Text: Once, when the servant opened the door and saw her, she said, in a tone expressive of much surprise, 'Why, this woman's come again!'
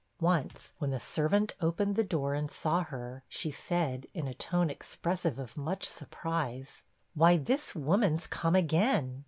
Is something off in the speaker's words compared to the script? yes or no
no